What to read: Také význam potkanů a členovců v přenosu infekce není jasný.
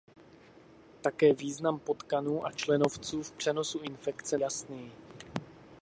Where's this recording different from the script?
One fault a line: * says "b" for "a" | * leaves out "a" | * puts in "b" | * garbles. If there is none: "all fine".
* leaves out "není"